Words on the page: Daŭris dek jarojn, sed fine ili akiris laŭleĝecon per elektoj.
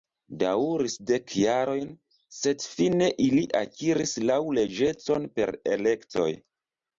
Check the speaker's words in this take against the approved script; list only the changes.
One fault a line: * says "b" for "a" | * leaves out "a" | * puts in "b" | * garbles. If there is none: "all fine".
all fine